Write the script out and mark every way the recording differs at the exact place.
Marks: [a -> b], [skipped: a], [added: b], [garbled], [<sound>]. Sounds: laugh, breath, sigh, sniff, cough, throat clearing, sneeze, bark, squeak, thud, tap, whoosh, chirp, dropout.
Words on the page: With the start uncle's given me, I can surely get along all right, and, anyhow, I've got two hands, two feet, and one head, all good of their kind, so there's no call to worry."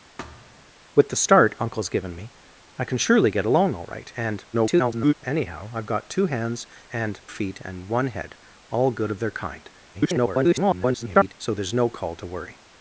[thud] With the start uncle's given me, I can surely get along all right, and, [garbled] anyhow, I've got two hands, [two -> and] feet, and one head, all good of their kind, [garbled] so there's no call to worry."